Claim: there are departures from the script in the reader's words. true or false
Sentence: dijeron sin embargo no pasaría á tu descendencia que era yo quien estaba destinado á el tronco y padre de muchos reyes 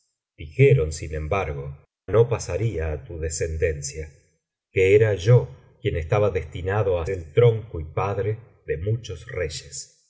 false